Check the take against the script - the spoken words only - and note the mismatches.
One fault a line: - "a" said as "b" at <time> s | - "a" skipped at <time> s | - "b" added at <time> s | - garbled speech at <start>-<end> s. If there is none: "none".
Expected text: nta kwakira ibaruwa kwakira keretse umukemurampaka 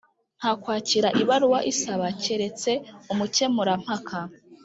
- "kwakira" said as "isaba" at 1.7 s